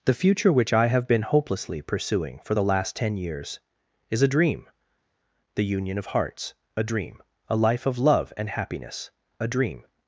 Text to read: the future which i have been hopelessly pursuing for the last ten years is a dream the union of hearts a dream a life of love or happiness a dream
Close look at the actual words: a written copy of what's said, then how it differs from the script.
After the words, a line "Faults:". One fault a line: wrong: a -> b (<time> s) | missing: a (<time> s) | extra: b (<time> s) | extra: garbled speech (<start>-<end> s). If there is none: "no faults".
the future which i have been hopelessly pursuing for the last ten years is a dream the union of hearts a dream a life of love and happiness a dream
Faults:
wrong: or -> and (8.4 s)